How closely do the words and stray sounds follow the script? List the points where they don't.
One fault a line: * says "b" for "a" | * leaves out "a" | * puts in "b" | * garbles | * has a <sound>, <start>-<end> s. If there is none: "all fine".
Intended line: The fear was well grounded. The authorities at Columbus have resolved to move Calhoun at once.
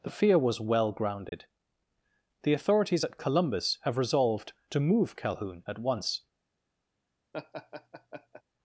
* has a dropout, 1.3-1.3 s
* has a laugh, 7.3-8.4 s